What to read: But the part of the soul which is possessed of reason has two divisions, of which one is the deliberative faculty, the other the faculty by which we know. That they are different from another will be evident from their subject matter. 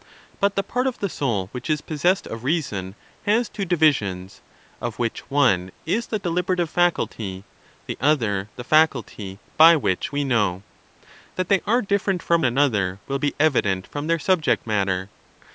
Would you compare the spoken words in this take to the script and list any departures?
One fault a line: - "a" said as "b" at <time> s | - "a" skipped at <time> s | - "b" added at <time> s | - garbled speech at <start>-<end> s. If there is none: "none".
none